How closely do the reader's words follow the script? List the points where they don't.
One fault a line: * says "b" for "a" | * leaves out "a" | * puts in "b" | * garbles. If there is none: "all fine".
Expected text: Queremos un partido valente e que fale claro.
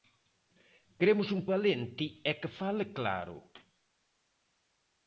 * leaves out "partido"